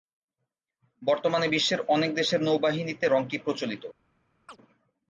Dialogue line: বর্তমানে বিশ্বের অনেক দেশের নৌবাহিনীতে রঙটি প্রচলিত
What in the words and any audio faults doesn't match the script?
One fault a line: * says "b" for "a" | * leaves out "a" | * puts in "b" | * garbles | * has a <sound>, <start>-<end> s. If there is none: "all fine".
* has a chirp, 4.5-4.6 s